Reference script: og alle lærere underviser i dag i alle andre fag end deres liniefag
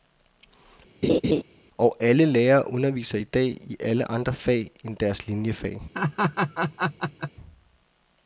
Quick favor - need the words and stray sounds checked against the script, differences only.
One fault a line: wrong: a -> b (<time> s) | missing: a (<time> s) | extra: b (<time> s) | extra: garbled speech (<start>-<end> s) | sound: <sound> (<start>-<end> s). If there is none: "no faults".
sound: laugh (1.0-1.4 s)
sound: laugh (5.9-7.3 s)